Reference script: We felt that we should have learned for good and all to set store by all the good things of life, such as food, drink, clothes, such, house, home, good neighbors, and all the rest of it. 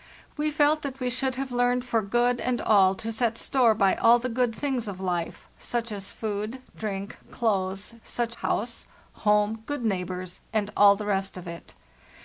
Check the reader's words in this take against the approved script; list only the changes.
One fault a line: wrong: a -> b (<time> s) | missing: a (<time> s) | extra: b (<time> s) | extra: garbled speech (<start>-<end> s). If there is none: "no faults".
no faults